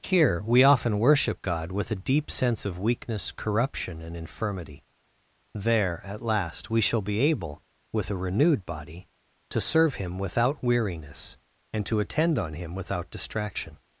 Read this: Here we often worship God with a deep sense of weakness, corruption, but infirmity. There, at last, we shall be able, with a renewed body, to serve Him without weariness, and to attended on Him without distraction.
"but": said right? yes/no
no